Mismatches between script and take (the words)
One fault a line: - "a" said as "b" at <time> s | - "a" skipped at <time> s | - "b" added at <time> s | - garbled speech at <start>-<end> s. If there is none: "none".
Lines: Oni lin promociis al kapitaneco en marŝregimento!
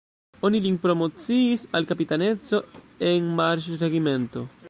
none